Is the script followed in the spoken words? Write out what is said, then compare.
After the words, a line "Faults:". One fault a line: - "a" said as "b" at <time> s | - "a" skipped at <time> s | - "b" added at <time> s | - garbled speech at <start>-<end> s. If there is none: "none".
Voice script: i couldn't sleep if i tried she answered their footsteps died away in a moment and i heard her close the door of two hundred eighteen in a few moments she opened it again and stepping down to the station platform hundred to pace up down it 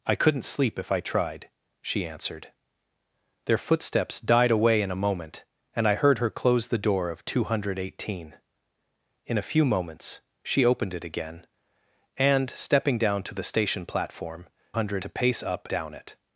i couldn't sleep if i tried she answered their footsteps died away in a moment and i heard her close the door of two hundred eighteen in a few moments she opened it again and stepping down to the station platform hundred to pace up down it
Faults:
none